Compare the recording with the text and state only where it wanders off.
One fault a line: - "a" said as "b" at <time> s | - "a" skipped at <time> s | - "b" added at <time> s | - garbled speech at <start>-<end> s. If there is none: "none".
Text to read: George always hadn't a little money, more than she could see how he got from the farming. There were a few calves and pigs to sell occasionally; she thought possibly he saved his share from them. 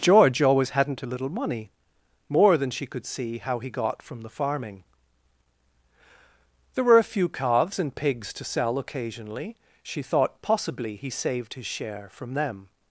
none